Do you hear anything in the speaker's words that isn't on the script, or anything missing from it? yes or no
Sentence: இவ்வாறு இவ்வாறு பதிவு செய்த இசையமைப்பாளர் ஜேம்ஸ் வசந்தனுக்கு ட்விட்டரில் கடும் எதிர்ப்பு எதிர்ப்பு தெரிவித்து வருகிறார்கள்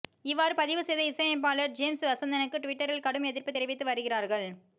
yes